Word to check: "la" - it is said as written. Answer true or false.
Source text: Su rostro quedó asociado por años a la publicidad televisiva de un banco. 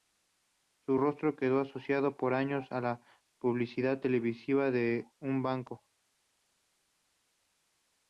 true